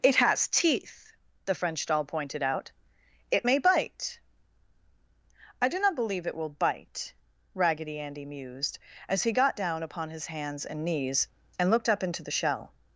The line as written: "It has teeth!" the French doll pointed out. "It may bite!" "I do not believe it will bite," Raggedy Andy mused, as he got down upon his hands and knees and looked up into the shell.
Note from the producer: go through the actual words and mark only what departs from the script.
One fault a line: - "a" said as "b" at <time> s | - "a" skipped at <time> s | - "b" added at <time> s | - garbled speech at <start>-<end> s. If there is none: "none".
none